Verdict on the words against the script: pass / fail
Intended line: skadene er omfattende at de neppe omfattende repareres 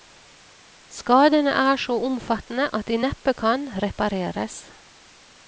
fail